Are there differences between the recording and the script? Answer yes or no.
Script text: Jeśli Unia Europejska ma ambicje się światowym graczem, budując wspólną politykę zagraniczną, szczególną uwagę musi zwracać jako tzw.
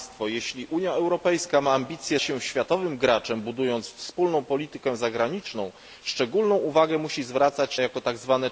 no